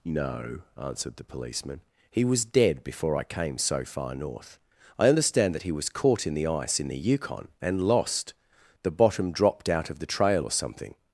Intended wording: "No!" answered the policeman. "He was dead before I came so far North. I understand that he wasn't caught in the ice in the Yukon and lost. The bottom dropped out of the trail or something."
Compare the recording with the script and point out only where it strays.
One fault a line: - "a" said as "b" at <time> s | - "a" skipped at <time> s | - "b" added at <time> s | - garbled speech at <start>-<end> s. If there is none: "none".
- "wasn't" said as "was" at 5.7 s